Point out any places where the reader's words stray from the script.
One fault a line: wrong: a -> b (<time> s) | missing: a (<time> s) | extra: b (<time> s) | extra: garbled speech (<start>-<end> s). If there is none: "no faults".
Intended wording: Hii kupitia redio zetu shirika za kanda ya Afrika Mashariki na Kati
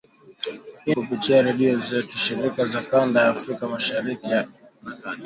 no faults